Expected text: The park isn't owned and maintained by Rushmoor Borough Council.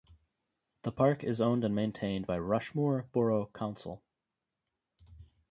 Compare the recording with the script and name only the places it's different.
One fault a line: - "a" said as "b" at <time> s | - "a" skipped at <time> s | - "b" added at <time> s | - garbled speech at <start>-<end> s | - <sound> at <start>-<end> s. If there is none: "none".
- "isn't" said as "is" at 1.2 s